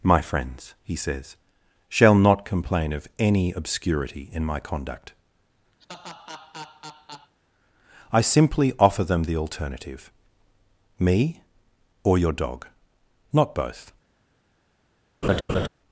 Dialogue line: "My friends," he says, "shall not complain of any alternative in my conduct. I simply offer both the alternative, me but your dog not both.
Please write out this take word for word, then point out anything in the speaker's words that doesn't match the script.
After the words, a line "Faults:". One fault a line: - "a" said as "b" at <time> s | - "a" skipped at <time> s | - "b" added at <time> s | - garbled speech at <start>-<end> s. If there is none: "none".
"My friends," he says, "shall not complain of any obscurity in my conduct. I simply offer them the alternative, me or your dog not both.
Faults:
- "alternative" said as "obscurity" at 3.5 s
- "both" said as "them" at 9.0 s
- "but" said as "or" at 12.0 s